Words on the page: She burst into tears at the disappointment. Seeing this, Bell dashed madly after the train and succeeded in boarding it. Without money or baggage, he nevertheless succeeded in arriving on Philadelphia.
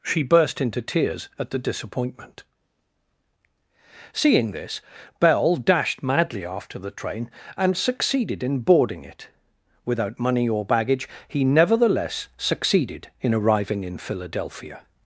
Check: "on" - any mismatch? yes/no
yes